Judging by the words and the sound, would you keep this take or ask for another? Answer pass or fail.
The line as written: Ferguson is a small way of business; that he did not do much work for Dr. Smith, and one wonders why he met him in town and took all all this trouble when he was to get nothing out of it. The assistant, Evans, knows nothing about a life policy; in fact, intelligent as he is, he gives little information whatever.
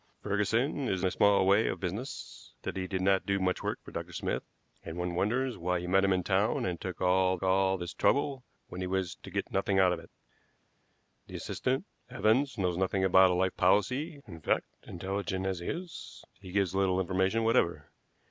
pass